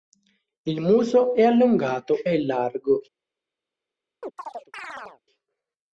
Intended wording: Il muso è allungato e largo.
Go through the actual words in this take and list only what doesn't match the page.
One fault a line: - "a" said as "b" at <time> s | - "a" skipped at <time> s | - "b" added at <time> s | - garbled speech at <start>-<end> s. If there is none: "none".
none